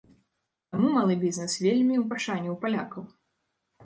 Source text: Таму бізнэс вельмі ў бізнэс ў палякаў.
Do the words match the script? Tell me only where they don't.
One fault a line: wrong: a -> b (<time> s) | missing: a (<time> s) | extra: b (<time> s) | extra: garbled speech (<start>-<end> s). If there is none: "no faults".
extra: малы (0.9 s)
wrong: бізнэс -> пашане (2.1 s)